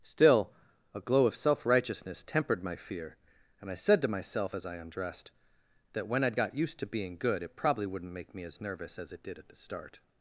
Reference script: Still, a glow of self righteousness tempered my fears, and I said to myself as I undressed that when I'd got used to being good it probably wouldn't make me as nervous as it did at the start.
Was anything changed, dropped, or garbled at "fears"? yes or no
yes